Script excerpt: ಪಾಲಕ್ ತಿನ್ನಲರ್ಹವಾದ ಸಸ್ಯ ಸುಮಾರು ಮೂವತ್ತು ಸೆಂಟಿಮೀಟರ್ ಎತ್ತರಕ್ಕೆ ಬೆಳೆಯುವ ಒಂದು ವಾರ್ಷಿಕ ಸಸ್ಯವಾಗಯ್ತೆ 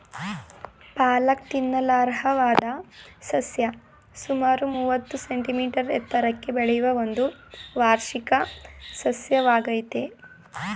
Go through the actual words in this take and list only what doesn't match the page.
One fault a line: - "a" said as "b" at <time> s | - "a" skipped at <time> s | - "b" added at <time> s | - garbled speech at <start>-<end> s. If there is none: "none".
none